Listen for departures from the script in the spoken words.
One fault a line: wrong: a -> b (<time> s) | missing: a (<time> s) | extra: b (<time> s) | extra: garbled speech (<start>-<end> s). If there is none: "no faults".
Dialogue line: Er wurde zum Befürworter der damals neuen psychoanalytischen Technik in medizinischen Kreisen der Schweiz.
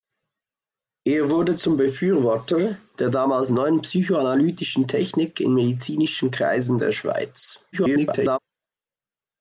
extra: garbled speech (7.7-8.4 s)